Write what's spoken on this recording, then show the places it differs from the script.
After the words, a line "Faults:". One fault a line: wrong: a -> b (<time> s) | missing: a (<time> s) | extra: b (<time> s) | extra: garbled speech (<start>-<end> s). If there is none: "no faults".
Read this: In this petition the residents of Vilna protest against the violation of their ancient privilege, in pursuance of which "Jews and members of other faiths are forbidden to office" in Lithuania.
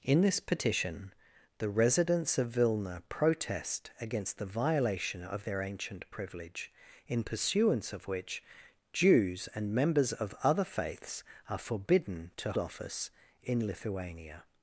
In this petition the residents of Vilna protest against the violation of their ancient privilege, in pursuance of which "Jews and members of other faiths are forbidden to office" in Lithuania.
Faults:
no faults